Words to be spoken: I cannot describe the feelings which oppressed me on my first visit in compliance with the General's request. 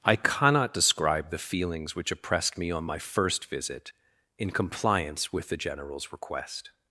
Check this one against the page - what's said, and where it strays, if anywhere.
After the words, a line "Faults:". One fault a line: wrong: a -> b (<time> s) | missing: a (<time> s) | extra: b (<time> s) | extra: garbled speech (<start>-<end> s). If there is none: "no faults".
I cannot describe the feelings which oppressed me on my first visit in compliance with the General's request.
Faults:
no faults